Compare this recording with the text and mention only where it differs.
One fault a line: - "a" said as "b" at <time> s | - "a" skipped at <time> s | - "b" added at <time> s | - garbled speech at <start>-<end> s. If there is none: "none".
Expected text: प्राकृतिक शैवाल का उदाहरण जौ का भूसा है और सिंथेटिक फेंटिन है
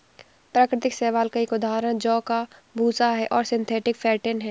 - "एक" added at 1.4 s